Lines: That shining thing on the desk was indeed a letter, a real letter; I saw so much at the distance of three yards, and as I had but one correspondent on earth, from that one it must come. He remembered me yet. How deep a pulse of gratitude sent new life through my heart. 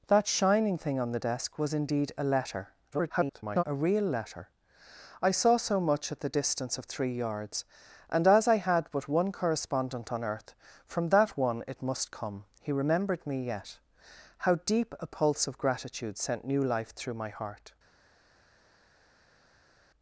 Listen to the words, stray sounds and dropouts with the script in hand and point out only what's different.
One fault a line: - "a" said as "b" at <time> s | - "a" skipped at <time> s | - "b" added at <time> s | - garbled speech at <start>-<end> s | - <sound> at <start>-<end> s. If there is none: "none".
- garbled speech at 2.9-3.6 s